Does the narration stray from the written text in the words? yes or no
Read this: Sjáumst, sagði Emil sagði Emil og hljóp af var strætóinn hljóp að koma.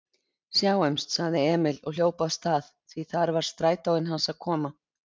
yes